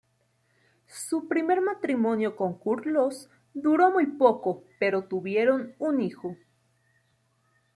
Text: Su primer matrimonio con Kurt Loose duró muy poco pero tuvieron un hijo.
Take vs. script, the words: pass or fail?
pass